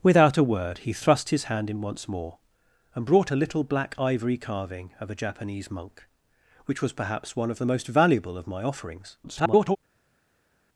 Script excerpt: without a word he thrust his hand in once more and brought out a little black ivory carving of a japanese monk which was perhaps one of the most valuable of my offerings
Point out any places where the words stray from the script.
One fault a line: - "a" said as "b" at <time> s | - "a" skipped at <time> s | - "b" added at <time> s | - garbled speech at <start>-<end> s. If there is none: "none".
- "out" skipped at 3.3 s
- garbled speech at 9.2-9.8 s